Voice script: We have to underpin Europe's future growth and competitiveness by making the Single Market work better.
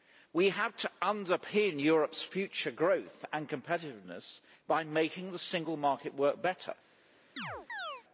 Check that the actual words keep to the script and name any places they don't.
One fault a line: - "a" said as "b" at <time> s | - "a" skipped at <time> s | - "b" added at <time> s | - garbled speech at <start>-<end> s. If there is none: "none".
none